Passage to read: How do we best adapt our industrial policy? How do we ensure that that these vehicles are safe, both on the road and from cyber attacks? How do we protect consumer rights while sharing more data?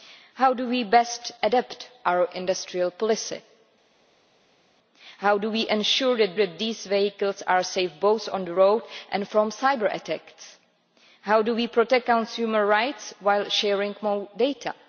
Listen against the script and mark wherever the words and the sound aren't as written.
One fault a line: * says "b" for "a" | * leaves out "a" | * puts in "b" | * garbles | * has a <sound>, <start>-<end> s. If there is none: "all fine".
all fine